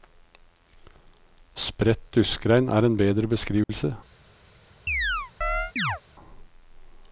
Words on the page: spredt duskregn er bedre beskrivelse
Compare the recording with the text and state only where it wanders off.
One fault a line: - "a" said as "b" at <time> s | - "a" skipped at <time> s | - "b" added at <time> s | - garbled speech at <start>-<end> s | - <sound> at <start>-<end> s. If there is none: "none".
- "en" added at 2.9 s
- dropout at 3.6-3.7 s
- chirp at 4.9-6.0 s